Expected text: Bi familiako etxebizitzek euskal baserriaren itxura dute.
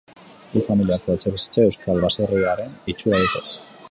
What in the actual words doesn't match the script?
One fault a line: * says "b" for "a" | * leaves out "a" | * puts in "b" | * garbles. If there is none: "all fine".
all fine